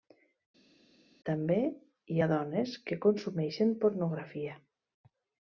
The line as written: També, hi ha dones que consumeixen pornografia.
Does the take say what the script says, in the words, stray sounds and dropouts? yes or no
yes